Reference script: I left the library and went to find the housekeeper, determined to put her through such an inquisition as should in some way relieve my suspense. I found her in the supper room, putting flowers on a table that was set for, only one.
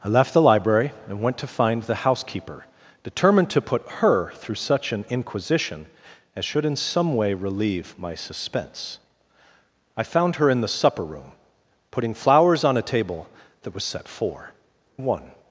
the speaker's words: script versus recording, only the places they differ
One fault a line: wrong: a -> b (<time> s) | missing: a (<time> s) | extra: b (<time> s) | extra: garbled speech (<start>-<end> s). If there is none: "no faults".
missing: only (14.5 s)